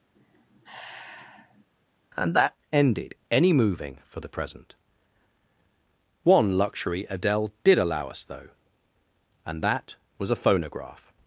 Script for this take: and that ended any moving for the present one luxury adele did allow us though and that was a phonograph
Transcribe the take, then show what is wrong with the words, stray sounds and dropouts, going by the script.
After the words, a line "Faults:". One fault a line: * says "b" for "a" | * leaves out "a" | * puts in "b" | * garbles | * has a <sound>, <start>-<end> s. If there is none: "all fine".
and that ended any moving for the present one luxury adele did allow us though and that was a phonograph
Faults:
* has a sigh, 0.2-1.7 s